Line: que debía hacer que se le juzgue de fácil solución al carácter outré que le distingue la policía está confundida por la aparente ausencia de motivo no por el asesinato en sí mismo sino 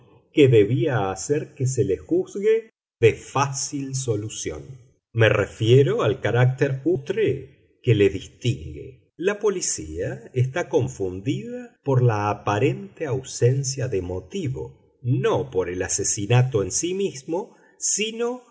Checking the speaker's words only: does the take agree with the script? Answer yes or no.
no